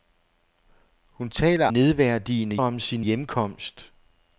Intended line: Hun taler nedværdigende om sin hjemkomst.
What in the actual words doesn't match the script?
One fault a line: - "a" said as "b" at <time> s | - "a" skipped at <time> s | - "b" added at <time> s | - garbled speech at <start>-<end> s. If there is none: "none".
none